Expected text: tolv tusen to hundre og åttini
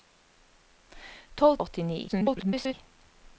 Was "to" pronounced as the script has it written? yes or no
no